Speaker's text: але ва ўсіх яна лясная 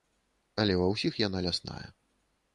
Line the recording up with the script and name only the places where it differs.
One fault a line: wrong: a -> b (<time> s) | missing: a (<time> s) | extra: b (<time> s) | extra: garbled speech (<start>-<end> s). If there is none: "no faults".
no faults